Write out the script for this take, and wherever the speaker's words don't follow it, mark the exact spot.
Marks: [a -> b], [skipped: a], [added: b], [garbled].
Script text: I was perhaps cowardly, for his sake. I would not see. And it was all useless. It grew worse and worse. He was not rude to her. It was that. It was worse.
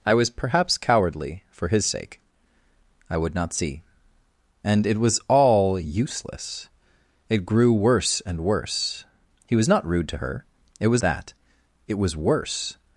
I was perhaps cowardly, for his sake. I would not see. And it was all useless. It grew worse and worse. He was not rude to her. It was that. It was worse.